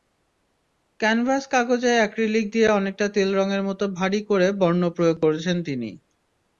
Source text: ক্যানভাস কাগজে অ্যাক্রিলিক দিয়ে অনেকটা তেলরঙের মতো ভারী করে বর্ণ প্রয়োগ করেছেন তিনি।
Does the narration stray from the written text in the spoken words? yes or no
no